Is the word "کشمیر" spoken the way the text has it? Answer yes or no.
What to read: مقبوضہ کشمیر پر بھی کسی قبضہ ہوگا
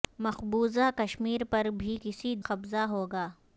yes